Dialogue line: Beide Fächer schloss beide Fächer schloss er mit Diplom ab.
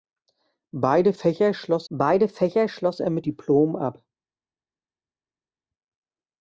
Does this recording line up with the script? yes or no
yes